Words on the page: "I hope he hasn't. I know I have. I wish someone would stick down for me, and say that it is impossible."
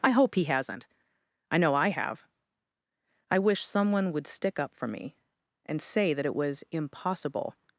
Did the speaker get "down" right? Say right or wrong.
wrong